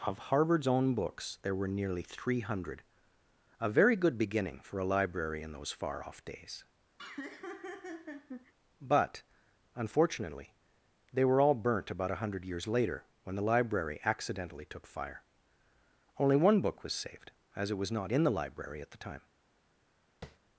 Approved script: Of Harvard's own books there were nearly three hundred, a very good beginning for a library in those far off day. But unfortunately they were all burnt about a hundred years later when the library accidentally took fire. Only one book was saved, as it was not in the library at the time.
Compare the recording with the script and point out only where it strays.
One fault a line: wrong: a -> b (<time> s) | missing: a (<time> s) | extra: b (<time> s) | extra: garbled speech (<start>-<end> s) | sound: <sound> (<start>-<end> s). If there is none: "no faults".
wrong: day -> days (6.2 s)
sound: laugh (7.0-8.5 s)
sound: tap (20.2-20.4 s)